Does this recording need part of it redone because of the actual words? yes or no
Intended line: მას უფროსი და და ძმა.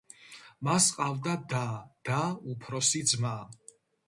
yes